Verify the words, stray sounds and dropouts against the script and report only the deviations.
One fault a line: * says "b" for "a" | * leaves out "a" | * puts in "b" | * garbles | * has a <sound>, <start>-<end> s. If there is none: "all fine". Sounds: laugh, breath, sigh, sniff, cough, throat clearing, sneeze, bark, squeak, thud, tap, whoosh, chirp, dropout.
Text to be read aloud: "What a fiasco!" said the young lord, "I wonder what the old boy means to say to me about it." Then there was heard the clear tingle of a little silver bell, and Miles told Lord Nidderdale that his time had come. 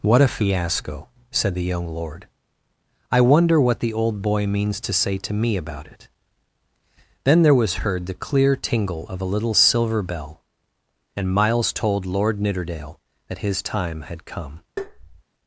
* has a tap, 14.8-15.2 s